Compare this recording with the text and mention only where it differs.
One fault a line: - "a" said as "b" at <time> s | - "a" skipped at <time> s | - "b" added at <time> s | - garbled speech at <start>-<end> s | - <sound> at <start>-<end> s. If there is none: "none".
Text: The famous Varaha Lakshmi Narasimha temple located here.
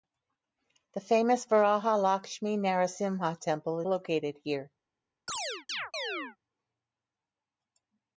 - chirp at 5.3-6.4 s